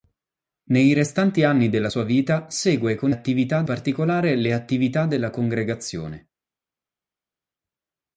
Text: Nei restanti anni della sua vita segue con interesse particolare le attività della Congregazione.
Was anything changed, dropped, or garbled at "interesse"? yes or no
yes